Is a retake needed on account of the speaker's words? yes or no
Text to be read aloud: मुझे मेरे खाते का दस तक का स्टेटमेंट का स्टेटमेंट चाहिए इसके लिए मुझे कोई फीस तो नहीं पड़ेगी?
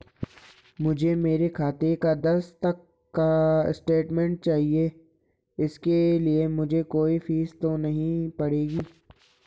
yes